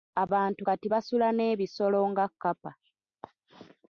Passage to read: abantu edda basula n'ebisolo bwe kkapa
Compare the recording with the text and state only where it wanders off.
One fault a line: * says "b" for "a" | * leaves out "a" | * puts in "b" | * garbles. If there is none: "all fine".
* says "kati" for "edda"
* says "nga" for "bwe"